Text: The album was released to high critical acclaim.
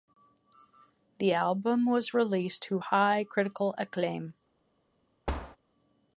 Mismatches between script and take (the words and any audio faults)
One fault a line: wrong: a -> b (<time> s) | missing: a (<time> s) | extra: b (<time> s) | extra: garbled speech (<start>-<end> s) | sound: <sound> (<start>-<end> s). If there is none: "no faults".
sound: thud (5.3-5.6 s)